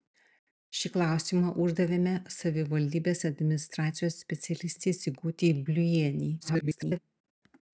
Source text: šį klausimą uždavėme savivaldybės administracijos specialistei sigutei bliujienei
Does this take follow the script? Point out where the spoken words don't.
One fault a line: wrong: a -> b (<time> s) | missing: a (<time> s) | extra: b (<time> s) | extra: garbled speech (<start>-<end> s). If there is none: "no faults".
extra: garbled speech (6.4-7.0 s)